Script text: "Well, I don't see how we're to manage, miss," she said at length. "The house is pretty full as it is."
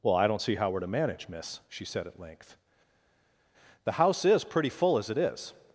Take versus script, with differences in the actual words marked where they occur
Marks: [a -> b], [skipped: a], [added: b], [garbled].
"Well, I don't see how we're to manage, miss," she said at length. "The house is pretty full as it is."